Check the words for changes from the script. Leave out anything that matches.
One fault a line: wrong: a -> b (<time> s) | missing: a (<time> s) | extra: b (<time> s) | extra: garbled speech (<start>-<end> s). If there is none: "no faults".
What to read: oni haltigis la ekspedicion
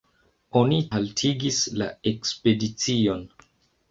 no faults